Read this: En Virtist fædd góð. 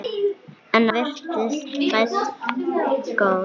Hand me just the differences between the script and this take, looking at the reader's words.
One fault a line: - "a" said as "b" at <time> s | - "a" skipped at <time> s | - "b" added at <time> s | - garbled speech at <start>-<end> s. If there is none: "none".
none